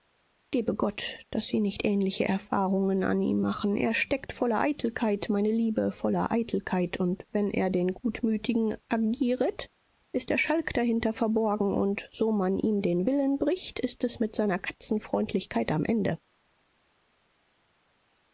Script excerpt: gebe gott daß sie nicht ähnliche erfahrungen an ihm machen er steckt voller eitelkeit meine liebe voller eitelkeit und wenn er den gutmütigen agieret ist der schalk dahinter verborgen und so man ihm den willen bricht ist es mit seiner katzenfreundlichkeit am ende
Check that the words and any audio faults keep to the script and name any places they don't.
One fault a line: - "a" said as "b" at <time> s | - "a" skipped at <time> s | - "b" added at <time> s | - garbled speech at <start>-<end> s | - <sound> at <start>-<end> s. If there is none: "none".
none